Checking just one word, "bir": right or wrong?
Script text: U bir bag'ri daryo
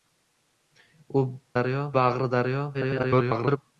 wrong